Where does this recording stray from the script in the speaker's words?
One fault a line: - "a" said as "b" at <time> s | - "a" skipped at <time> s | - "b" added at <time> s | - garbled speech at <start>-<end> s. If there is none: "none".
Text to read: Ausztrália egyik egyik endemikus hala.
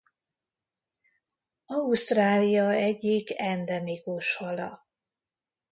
- "egyik" skipped at 3.4 s